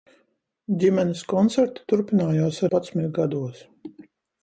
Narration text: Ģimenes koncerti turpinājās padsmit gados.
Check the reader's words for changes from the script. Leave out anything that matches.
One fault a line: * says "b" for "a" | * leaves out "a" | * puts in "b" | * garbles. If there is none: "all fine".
all fine